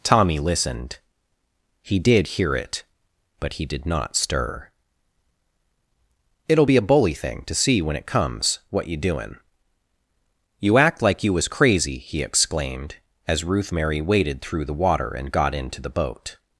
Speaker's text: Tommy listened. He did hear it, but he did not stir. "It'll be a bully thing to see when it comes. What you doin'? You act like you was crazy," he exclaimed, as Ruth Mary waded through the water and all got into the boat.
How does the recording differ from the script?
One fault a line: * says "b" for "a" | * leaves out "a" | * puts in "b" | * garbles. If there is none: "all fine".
* leaves out "all"